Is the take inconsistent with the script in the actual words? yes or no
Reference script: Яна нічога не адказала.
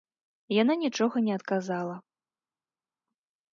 no